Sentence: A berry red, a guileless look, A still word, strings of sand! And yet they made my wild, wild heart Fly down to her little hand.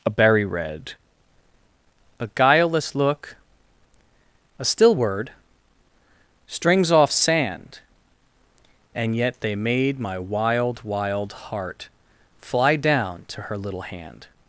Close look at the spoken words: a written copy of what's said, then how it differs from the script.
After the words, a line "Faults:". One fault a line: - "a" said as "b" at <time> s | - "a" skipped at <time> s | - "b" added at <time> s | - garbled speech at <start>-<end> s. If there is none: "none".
A berry red, a guileless look, A still word, strings off sand! And yet they made my wild, wild heart Fly down to her little hand.
Faults:
- "of" said as "off" at 6.9 s